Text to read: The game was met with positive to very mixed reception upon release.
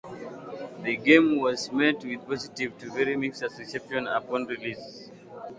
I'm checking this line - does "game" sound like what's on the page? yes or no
yes